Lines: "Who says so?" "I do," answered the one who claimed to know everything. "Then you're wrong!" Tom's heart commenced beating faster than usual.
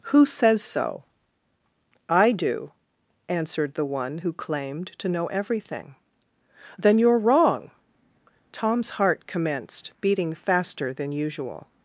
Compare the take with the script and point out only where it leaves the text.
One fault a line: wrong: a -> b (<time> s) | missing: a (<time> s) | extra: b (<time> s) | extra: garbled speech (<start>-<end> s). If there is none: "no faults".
no faults